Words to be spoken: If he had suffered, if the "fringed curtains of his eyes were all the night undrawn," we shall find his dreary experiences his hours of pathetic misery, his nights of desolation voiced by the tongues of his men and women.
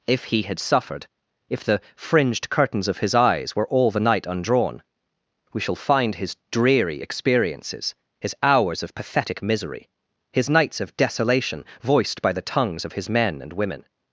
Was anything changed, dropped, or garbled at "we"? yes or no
no